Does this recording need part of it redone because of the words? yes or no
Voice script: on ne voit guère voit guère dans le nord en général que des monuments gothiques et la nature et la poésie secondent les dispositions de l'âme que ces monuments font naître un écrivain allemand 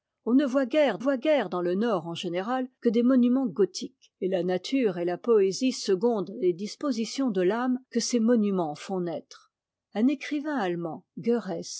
no